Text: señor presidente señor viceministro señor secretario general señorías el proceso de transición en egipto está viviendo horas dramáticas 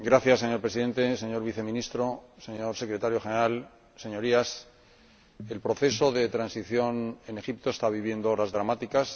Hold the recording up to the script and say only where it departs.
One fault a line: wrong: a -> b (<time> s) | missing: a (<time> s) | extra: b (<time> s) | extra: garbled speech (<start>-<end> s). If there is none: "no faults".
no faults